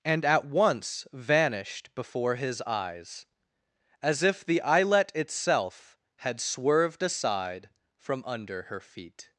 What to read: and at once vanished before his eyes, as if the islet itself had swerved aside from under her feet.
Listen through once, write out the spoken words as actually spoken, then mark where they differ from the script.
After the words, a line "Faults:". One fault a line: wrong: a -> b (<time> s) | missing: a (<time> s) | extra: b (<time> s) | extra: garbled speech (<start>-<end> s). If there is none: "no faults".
and at once vanished before his eyes, as if the islet itself had swerved aside from under her feet.
Faults:
no faults